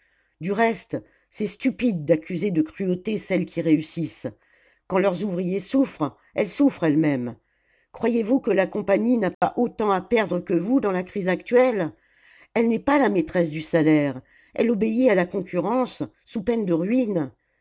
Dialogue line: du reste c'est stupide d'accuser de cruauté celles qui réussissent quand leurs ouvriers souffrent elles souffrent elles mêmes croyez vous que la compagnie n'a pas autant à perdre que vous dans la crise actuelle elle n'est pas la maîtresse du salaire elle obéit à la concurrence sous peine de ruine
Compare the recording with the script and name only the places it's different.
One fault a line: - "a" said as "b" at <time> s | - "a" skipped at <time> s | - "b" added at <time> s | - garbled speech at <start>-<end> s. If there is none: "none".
none